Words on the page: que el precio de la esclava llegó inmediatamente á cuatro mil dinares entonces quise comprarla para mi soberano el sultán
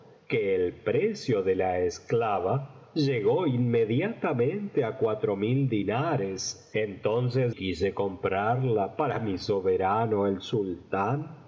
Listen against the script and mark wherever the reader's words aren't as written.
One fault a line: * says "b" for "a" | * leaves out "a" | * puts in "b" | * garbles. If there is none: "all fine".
all fine